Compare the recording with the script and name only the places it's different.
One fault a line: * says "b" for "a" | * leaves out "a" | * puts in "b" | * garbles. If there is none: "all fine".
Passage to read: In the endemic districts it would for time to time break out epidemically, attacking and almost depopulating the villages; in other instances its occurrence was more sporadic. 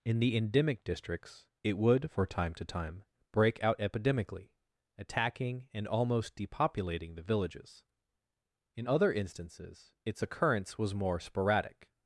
all fine